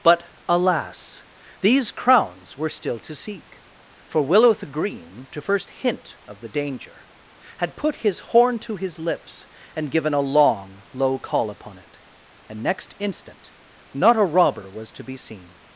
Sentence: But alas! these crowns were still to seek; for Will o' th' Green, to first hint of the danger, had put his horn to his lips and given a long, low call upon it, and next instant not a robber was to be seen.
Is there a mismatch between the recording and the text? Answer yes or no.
no